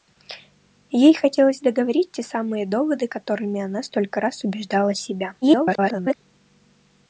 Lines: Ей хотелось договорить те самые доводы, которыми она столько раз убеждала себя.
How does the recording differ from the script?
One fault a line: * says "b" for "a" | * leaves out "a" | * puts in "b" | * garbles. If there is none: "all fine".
* garbles